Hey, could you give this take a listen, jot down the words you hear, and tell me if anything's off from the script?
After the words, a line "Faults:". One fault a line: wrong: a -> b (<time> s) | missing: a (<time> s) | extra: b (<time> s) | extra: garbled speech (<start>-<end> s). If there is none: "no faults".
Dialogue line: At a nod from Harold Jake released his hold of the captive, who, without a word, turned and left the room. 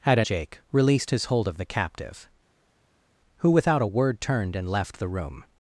At a Jake released his hold of the captive, who, without a word, turned and left the room.
Faults:
missing: nod from Harold (0.2 s)